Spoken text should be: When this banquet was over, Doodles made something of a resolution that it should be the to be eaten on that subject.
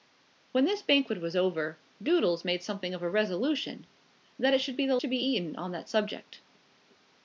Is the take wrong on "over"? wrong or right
right